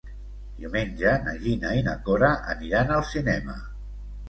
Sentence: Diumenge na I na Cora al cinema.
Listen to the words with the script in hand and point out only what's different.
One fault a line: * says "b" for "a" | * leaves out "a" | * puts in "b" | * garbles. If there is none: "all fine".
* puts in "Gina"
* puts in "aniran"